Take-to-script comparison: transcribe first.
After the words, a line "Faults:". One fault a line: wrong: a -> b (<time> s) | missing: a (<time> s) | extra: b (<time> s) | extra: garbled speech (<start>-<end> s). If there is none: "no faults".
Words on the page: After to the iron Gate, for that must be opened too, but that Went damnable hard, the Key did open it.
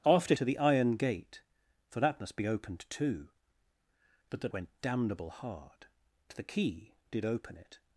After to the iron Gate, for that must be opened too, but that Went damnable hard, the Key did open it.
Faults:
no faults